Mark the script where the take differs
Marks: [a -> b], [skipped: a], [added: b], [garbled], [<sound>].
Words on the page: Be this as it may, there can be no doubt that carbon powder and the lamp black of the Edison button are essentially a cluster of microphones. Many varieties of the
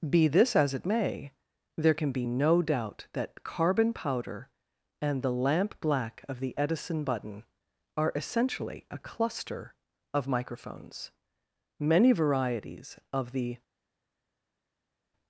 Be this as it may, there can be no doubt that carbon powder and the lamp black of the Edison button are essentially a cluster of microphones. Many varieties of the